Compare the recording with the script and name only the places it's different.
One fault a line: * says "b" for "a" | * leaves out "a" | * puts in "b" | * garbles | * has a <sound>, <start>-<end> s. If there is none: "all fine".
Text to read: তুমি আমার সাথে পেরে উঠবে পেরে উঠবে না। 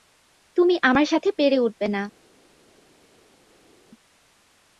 * leaves out "পেরে উঠবে"